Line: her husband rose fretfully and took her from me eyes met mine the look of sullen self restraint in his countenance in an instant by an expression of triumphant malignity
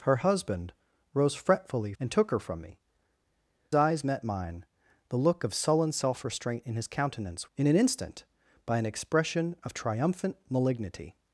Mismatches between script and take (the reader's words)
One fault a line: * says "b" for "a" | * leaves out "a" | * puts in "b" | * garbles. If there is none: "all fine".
all fine